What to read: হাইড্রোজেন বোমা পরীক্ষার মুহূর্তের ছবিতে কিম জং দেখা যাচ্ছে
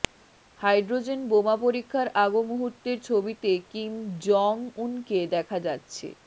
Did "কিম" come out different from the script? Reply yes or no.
no